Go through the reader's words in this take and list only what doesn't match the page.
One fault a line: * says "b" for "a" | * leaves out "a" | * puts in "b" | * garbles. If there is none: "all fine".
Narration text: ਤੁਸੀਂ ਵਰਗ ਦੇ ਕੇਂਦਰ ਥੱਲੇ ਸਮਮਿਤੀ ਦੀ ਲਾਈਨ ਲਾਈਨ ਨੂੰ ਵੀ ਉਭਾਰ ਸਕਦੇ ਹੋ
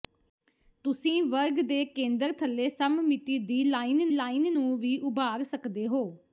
all fine